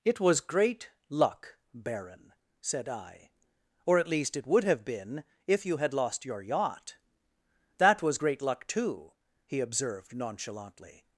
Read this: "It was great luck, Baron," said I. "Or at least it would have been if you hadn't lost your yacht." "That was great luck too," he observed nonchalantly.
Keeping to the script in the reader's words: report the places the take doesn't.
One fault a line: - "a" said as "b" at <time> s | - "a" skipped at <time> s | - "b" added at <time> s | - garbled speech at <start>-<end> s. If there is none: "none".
- "hadn't" said as "had" at 5.8 s